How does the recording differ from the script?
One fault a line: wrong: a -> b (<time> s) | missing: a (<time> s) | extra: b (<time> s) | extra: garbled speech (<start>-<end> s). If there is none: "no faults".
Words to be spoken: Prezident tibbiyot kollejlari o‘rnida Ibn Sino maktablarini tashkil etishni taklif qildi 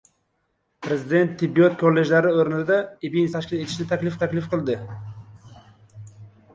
missing: Sino maktablarini (3.3 s)
extra: taklif (4.3 s)